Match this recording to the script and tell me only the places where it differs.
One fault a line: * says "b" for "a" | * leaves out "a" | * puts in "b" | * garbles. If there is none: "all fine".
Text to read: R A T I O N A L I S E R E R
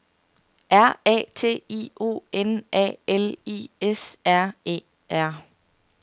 * leaves out "E"